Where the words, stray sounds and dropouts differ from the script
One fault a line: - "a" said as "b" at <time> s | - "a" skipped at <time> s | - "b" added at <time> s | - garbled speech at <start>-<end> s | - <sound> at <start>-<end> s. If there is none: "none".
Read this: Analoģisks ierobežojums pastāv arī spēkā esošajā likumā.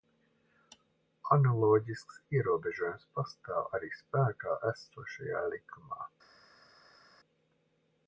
none